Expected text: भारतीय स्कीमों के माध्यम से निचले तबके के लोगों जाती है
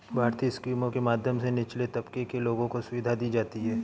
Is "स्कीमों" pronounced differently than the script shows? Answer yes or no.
no